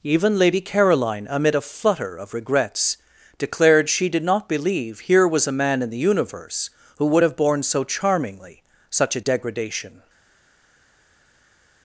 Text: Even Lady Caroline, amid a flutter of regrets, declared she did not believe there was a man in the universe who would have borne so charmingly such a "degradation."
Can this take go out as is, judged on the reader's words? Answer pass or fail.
fail